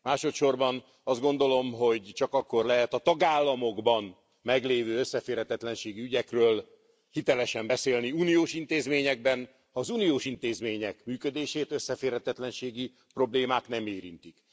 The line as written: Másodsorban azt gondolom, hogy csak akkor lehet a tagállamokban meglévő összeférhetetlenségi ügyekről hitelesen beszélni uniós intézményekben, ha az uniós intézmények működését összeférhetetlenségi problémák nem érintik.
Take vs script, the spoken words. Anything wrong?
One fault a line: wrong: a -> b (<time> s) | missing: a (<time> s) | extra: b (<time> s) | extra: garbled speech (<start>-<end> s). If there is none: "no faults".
no faults